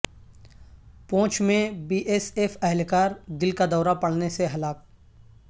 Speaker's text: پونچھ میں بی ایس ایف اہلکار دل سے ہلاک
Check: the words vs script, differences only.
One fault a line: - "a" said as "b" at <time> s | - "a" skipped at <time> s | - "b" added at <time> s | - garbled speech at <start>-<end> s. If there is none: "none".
- "کا دورہ پڑنے" added at 3.5 s